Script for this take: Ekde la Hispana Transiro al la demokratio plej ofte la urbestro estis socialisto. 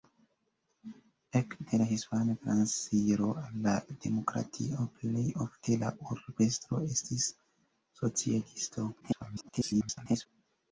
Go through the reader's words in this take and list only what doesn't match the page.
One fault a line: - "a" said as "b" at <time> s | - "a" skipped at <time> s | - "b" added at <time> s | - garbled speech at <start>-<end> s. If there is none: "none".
- garbled speech at 9.0-10.3 s